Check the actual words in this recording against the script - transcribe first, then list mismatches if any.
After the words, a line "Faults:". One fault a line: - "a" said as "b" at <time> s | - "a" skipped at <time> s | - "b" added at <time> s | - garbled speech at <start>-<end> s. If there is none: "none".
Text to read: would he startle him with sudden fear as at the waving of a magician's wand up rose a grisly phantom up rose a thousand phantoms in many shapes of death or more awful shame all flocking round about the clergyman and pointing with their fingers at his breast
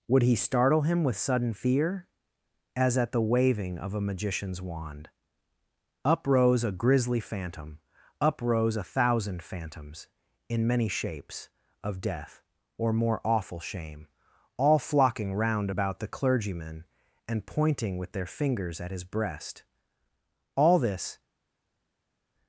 would he startle him with sudden fear as at the waving of a magician's wand up rose a grisly phantom up rose a thousand phantoms in many shapes of death or more awful shame all flocking round about the clergyman and pointing with their fingers at his breast all this
Faults:
- "all this" added at 20.5 s